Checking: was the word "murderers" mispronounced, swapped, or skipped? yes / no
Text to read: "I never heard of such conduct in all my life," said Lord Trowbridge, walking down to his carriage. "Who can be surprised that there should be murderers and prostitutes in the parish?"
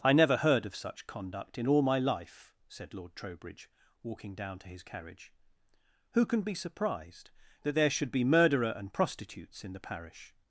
yes